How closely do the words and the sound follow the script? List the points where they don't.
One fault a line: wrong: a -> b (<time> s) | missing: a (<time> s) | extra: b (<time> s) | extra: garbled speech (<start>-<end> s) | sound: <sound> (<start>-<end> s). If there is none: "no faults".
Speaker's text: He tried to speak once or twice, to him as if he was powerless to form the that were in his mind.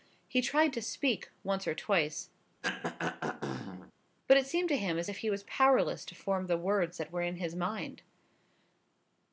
sound: throat clearing (2.6-3.9 s)
extra: but it seemed (4.3 s)
extra: words (6.6 s)